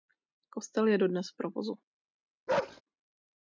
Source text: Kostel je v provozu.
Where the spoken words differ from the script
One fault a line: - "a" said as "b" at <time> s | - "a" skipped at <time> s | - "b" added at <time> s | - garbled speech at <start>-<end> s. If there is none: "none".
- "dodnes" added at 1.0 s